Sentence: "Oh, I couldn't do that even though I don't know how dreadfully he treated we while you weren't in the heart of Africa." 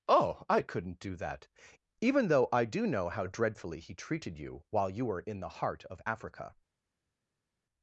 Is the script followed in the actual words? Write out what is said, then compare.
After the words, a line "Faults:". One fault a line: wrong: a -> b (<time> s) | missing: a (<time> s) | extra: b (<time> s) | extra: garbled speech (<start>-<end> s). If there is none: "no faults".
"Oh, I couldn't do that even though I do know how dreadfully he treated you while you were in the heart of Africa."
Faults:
wrong: don't -> do (2.6 s)
wrong: we -> you (4.4 s)
wrong: weren't -> were (5.0 s)